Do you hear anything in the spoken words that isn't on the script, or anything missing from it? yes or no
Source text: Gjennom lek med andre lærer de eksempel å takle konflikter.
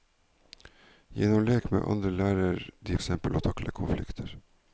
no